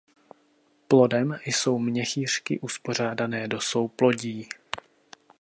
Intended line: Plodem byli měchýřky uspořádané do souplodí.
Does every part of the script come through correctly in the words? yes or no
no